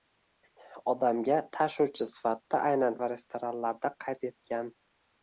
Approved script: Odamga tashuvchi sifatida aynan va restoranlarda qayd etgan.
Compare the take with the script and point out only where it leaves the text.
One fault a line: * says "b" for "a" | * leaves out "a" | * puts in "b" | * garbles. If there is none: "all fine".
all fine